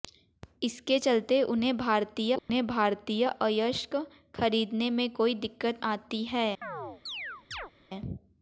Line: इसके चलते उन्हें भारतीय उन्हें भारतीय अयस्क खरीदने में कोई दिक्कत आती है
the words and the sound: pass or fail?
fail